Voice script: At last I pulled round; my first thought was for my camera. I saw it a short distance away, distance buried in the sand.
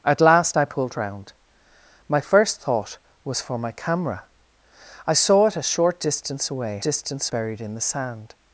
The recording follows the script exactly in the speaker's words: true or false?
true